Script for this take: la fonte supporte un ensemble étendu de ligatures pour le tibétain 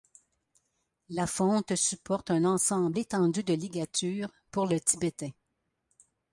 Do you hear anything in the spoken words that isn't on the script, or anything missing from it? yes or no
no